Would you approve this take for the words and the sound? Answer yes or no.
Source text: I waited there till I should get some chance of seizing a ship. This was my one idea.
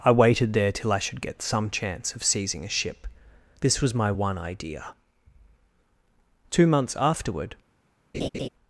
no